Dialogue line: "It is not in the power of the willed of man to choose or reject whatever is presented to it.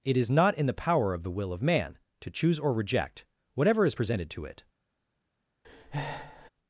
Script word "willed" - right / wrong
wrong